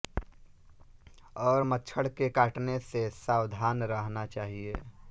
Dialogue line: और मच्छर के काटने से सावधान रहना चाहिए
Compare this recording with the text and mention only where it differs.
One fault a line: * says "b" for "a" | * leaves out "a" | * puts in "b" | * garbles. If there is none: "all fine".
all fine